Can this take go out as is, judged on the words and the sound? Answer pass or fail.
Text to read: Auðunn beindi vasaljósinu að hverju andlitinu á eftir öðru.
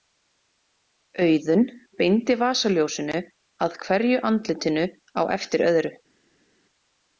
pass